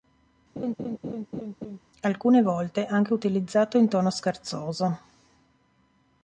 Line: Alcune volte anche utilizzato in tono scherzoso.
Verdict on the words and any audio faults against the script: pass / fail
fail